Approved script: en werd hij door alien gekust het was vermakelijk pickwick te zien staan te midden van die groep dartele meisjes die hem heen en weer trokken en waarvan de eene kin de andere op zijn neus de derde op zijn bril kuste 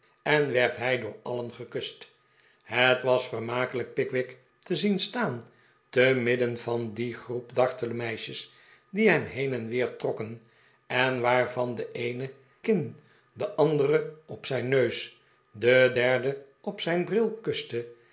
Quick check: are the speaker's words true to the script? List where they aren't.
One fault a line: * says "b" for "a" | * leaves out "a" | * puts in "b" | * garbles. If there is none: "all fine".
all fine